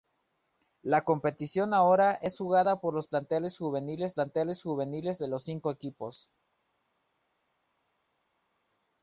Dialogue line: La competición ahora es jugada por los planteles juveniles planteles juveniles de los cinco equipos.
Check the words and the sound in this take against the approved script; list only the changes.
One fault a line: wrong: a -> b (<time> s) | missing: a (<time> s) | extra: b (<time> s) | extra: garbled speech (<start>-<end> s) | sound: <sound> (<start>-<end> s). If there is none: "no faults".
no faults